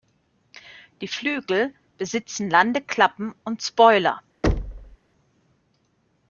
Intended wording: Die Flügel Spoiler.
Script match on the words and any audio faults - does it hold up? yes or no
no